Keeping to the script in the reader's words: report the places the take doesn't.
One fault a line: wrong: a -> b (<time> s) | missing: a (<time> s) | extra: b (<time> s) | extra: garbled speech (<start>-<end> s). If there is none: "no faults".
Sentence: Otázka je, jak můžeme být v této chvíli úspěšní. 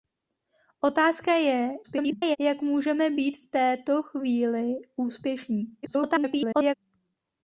extra: garbled speech (1.8-2.4 s)
extra: garbled speech (5.8-6.7 s)